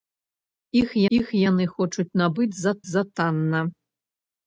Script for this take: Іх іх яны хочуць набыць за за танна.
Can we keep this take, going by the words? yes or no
yes